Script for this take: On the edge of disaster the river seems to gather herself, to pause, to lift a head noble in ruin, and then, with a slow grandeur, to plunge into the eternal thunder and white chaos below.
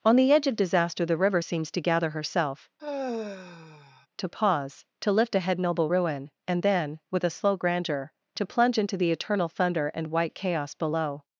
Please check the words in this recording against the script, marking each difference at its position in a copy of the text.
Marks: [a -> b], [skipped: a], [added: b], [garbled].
On the edge of disaster the river seems to gather herself, to pause, to lift a head noble [skipped: in] ruin, and then, with a slow grandeur, to plunge into the eternal thunder and white chaos below.